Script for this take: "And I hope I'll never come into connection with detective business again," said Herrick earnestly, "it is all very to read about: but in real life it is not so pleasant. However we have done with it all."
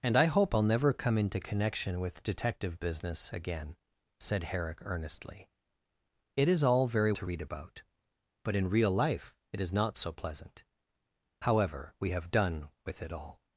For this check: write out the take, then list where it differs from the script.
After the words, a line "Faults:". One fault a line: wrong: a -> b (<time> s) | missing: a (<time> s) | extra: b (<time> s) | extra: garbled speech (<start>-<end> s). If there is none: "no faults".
"And I hope I'll never come into connection with detective business again," said Herrick earnestly, "it is all very to read about: but in real life it is not so pleasant. However we have done with it all."
Faults:
no faults